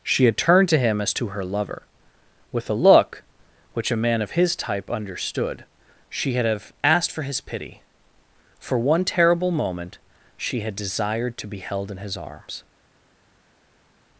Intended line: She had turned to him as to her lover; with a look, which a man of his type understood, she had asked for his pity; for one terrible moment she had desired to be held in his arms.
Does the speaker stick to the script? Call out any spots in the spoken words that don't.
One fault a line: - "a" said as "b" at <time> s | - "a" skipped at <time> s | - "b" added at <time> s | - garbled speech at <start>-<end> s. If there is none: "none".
- "have" added at 6.5 s